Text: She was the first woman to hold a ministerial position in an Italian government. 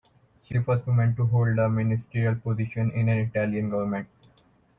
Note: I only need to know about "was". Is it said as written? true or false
false